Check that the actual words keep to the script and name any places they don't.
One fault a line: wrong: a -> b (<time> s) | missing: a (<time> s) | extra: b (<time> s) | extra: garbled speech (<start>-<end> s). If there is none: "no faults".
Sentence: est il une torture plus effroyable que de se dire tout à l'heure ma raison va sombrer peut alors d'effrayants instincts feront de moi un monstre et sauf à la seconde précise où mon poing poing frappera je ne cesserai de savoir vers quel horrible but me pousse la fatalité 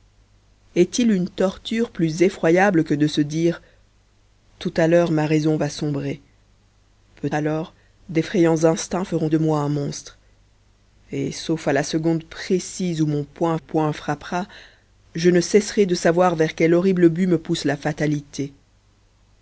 no faults